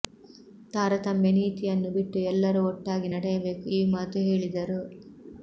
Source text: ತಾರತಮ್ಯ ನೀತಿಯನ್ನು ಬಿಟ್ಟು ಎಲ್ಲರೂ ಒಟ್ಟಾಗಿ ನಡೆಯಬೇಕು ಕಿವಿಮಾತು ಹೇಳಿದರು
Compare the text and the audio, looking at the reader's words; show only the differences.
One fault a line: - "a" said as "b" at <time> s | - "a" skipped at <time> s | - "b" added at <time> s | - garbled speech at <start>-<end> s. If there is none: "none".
none